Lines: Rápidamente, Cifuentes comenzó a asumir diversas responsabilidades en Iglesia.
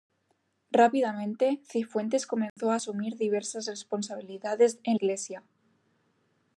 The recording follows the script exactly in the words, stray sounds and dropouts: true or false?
false